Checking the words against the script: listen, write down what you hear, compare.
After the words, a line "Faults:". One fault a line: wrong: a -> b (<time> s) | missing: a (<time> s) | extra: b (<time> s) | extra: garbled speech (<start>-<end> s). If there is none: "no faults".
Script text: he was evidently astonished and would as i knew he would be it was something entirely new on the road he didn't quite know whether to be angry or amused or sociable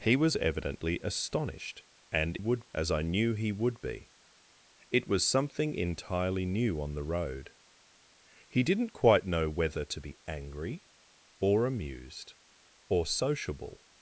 he was evidently astonished and would as i knew he would be it was something entirely new on the road he didn't quite know whether to be angry or amused or sociable
Faults:
no faults